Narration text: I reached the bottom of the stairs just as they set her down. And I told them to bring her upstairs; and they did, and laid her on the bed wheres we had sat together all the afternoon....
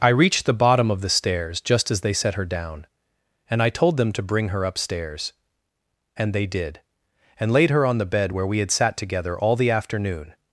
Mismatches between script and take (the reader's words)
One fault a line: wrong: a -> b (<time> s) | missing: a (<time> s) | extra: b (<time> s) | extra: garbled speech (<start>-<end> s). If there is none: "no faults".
wrong: wheres -> where (8.3 s)